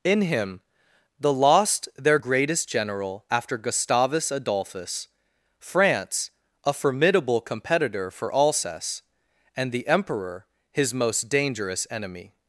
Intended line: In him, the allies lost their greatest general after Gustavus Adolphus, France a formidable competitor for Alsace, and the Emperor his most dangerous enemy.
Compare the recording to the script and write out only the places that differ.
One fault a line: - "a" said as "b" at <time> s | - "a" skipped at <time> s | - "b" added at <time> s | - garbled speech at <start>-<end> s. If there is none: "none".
- "allies" skipped at 1.3 s